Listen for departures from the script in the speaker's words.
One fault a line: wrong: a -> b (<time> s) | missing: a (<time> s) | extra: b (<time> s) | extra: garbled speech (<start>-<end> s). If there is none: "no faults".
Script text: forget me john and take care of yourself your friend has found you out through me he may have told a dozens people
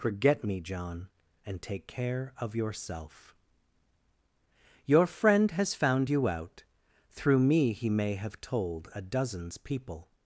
no faults